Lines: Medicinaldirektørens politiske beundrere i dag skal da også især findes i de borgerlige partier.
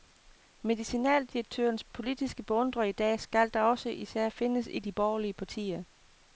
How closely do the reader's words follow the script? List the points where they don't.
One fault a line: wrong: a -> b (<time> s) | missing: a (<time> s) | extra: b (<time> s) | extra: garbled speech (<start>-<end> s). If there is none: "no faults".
no faults